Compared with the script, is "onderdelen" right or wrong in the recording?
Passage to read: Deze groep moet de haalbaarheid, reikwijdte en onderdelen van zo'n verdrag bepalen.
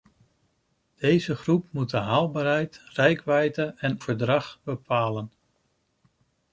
wrong